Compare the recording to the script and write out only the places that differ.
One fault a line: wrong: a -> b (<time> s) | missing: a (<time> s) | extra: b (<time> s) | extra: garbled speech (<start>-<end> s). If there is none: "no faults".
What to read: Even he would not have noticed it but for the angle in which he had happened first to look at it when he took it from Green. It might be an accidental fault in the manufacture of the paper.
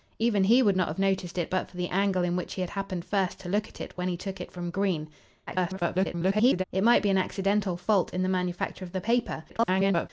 extra: garbled speech (5.5-6.6 s)
extra: garbled speech (9.5-10.1 s)